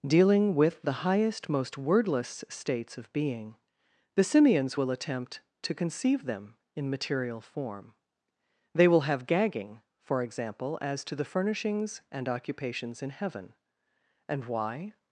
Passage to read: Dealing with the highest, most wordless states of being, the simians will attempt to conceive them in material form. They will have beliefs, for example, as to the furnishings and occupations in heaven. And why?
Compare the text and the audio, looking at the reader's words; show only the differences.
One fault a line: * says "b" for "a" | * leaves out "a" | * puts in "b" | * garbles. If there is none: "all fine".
* says "gagging" for "beliefs"